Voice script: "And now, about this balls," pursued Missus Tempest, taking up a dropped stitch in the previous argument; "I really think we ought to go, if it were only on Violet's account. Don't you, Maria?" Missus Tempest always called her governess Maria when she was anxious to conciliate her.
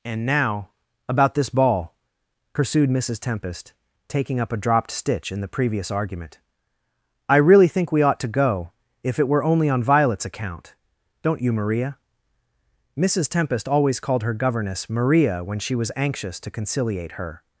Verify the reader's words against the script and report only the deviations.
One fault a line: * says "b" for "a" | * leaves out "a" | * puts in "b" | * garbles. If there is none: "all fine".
* says "ball" for "balls"